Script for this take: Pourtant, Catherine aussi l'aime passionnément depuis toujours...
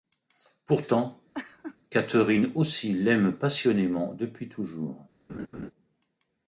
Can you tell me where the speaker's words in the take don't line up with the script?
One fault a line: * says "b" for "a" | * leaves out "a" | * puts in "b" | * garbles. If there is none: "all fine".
all fine